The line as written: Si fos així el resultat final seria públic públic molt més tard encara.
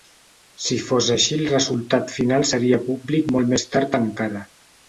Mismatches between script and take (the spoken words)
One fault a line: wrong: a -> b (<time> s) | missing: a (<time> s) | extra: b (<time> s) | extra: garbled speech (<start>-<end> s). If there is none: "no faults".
missing: públic (3.4 s)